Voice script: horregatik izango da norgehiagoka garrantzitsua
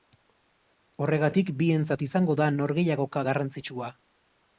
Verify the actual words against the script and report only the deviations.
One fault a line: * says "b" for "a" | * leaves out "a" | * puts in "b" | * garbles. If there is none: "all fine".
* puts in "bientzat"